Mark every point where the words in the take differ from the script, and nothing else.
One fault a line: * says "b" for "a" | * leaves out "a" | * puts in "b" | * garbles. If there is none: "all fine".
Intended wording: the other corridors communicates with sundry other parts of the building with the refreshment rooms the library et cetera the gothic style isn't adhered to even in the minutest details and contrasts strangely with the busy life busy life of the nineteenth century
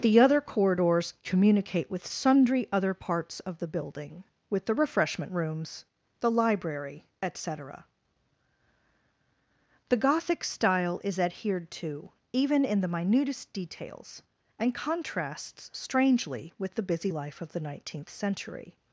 * says "communicate" for "communicates"
* says "is" for "isn't"
* leaves out "busy life"